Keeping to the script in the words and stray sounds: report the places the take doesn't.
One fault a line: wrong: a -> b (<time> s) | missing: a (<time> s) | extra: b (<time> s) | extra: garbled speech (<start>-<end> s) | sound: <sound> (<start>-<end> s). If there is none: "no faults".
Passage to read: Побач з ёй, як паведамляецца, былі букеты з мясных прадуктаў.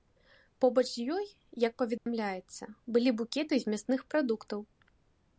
sound: dropout (2.0-2.1 s)